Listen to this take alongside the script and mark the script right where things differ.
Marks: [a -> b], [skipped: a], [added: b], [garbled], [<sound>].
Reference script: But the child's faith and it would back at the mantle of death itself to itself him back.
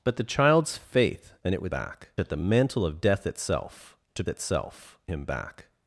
But the child's faith and it would back at the mantle of death itself to itself him back.